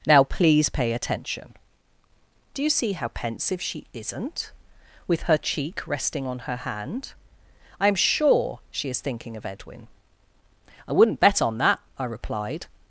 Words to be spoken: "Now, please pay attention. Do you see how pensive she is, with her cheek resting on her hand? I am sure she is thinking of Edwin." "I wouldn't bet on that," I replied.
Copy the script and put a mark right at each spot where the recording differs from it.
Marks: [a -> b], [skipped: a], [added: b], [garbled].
"Now, please pay attention. Do you see how pensive she [is, -> isn't] with her cheek resting on her hand? I am sure she is thinking of Edwin." "I wouldn't bet on that," I replied.